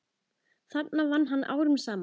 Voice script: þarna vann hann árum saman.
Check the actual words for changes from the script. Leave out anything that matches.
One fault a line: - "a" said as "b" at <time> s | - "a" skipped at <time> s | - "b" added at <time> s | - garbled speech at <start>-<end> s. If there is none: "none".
none